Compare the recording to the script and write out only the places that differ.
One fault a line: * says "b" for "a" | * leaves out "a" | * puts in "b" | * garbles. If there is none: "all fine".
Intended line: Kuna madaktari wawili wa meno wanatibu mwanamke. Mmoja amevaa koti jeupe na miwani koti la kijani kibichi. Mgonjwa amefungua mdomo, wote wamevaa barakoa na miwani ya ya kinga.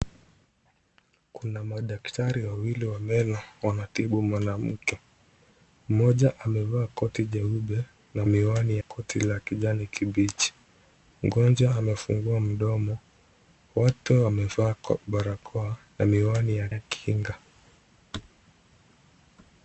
all fine